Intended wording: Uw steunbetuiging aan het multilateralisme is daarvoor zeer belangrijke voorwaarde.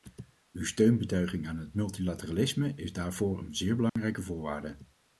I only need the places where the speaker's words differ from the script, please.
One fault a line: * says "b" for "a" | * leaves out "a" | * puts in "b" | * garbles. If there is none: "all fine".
* puts in "een"